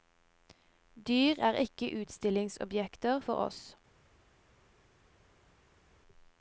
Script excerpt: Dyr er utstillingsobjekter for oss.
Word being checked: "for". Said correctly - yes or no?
yes